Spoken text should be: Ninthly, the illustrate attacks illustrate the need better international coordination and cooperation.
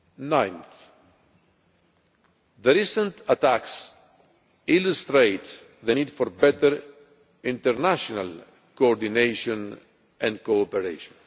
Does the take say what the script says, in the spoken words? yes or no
no